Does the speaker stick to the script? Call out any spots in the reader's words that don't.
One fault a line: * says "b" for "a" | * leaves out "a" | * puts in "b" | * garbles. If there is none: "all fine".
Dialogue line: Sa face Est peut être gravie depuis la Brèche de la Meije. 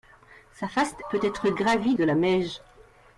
* leaves out "Est"
* leaves out "depuis la Brèche"